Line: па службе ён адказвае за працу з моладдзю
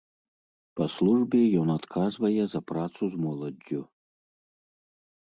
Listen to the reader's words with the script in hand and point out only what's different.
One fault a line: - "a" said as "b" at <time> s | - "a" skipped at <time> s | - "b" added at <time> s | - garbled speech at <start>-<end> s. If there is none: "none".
none